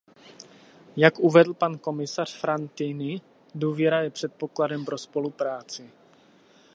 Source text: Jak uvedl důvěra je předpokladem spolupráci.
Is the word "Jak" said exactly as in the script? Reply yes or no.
yes